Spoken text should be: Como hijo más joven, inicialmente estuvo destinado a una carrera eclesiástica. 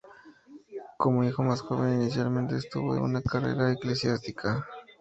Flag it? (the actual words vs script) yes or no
yes